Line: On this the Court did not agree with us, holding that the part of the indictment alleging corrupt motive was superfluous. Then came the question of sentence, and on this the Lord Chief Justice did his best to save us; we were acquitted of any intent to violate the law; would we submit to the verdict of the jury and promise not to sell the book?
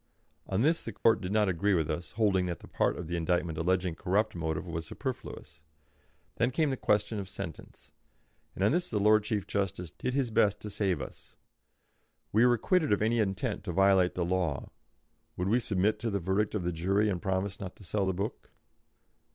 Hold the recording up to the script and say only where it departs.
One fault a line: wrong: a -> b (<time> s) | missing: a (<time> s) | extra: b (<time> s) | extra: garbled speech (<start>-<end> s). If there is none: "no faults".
no faults